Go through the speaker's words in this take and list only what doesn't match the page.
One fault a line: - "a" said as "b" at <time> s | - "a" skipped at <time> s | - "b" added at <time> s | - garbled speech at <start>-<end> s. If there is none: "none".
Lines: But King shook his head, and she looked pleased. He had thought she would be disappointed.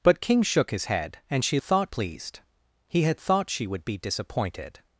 - "looked" said as "thought" at 1.6 s